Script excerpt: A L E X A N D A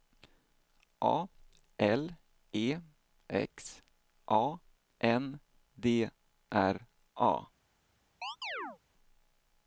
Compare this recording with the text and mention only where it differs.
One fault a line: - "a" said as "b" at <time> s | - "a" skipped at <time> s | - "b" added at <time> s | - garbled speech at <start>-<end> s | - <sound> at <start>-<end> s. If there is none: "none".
- "R" added at 6.5 s
- chirp at 8.2-8.8 s